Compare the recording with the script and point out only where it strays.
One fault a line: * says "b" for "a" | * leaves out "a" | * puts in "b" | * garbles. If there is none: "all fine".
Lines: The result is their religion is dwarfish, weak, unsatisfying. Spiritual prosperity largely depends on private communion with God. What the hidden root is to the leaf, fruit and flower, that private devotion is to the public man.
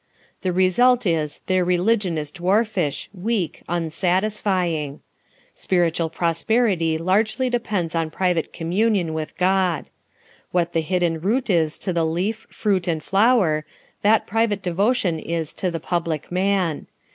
all fine